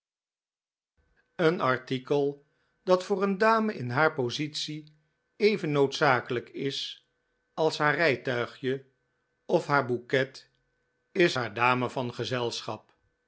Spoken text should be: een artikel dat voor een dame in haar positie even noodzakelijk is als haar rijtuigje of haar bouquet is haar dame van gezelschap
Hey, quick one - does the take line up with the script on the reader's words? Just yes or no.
yes